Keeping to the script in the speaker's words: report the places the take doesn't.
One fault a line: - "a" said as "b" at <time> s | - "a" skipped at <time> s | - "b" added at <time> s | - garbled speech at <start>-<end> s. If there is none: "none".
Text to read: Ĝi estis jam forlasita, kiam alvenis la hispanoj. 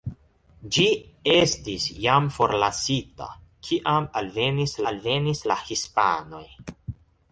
- "alvenis" added at 4.9 s